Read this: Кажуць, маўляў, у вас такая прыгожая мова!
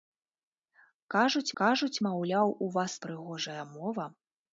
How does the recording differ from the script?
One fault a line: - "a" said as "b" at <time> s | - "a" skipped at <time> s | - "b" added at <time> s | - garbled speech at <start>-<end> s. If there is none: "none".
- "кажуць" added at 1.6 s
- "такая" skipped at 2.9 s